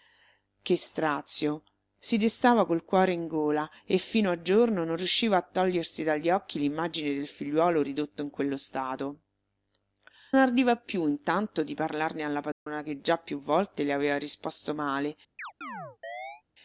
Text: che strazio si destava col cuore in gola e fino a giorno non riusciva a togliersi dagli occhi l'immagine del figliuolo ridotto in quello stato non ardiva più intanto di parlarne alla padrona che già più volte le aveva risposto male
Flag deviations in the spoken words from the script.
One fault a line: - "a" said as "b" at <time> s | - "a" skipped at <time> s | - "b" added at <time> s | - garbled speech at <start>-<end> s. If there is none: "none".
- "non" skipped at 9.2 s